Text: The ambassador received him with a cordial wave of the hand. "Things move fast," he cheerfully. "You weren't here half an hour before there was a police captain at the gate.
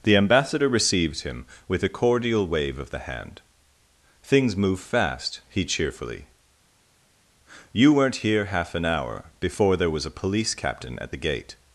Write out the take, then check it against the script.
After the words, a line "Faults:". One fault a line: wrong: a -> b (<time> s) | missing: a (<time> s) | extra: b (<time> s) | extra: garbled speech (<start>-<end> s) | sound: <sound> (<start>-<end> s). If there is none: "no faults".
The ambassador received him with a cordial wave of the hand. "Things move fast," he cheerfully. "You weren't here half an hour before there was a police captain at the gate.
Faults:
no faults